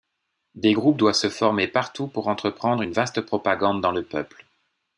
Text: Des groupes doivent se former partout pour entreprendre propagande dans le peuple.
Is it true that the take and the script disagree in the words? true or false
true